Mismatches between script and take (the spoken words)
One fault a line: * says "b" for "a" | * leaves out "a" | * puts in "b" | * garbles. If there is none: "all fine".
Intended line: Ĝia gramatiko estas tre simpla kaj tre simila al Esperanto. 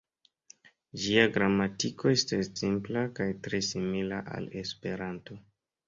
* leaves out "tre"